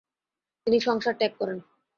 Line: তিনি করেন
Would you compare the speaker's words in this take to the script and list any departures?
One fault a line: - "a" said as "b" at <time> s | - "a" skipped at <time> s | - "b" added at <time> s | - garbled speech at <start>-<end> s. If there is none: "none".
- "সংসার ত্যাগ" added at 0.8 s